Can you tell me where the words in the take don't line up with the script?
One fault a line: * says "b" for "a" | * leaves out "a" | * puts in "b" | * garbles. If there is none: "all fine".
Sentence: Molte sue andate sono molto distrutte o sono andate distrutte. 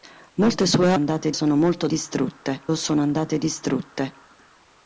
all fine